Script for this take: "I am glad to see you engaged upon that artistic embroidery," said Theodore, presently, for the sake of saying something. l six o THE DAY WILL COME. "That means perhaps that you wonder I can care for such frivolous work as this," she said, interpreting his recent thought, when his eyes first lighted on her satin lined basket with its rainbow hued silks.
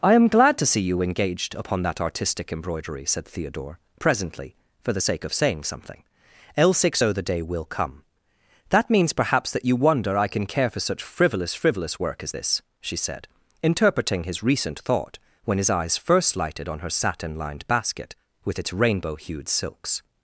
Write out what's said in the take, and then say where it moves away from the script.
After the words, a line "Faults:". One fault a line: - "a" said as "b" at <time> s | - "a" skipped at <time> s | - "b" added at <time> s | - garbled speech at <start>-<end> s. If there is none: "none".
"I am glad to see you engaged upon that artistic embroidery," said Theodore, presently, for the sake of saying something. l six o THE DAY WILL COME. "That means perhaps that you wonder I can care for such frivolous frivolous work as this," she said, interpreting his recent thought, when his eyes first lighted on her satin lined basket with its rainbow hued silks.
Faults:
- "frivolous" added at 11.6 s